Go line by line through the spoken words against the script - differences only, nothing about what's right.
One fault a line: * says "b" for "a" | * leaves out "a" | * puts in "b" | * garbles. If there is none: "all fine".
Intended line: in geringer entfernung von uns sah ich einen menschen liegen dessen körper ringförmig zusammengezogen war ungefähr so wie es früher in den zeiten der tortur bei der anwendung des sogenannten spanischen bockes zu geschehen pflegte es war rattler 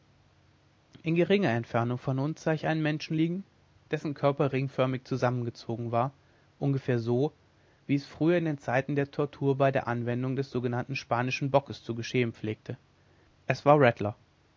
all fine